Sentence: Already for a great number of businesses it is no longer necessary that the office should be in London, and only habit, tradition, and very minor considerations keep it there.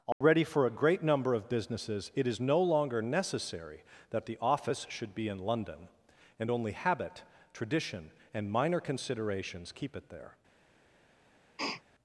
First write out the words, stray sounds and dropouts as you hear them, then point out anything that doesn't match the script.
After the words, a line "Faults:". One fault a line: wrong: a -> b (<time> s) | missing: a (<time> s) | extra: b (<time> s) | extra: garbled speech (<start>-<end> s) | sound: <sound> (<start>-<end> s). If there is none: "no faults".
Already for a great number of businesses it is no longer necessary that the office should be in London, and only habit, tradition, and minor considerations keep it there.
Faults:
sound: dropout (0.1-0.2 s)
missing: very (8.5 s)
sound: sniff (11.6-11.8 s)